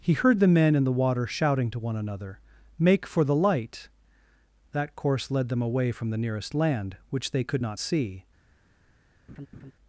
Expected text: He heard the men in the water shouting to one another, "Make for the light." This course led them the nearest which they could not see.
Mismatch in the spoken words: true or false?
true